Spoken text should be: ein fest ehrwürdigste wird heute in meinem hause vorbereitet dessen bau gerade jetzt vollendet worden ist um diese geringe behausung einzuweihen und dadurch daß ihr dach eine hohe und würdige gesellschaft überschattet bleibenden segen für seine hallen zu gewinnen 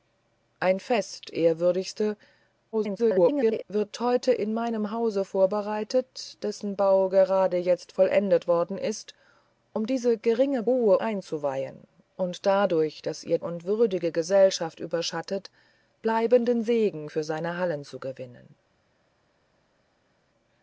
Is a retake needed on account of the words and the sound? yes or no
yes